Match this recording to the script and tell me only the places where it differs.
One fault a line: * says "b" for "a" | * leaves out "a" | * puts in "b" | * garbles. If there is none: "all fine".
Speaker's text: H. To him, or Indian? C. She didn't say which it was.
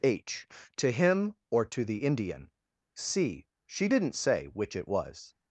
* puts in "to the"